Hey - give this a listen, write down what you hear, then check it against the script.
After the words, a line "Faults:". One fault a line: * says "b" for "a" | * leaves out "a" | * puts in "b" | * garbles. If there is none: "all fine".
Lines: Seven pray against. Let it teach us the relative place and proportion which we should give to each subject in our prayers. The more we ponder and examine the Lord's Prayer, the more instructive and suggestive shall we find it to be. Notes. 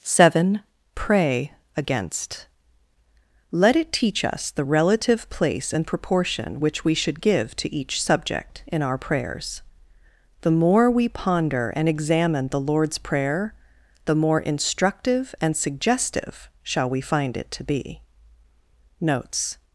Seven pray against. Let it teach us the relative place and proportion which we should give to each subject in our prayers. The more we ponder and examine the Lord's Prayer, the more instructive and suggestive shall we find it to be. Notes.
Faults:
all fine